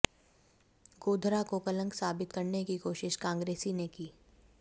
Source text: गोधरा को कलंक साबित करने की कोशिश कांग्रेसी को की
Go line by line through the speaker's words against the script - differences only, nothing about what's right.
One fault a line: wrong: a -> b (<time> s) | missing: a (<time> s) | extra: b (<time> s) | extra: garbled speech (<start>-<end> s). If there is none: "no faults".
wrong: को -> ने (3.7 s)